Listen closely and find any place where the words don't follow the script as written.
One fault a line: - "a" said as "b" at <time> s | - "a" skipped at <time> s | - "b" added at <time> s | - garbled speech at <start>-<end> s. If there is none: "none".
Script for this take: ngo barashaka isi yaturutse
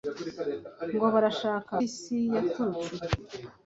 none